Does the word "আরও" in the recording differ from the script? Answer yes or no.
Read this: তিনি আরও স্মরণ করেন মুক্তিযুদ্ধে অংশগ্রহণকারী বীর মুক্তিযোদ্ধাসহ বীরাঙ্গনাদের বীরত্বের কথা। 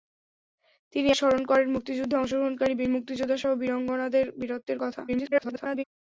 yes